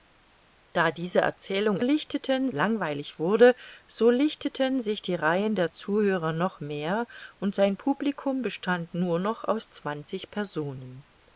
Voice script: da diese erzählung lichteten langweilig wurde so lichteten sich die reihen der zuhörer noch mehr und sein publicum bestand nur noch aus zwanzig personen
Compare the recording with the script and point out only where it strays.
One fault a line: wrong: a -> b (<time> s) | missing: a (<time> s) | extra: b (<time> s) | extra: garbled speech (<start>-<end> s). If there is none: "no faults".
no faults